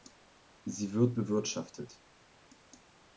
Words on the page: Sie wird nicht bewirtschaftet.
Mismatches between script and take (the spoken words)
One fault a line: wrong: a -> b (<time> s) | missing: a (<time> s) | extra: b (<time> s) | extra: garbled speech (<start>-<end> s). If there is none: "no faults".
missing: nicht (1.2 s)